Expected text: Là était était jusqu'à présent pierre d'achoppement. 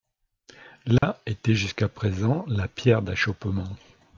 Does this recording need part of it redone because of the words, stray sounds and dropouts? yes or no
yes